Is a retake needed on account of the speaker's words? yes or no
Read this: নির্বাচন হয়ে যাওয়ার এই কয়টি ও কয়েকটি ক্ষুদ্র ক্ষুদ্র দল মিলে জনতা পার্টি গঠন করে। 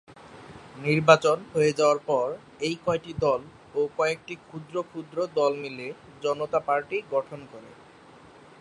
yes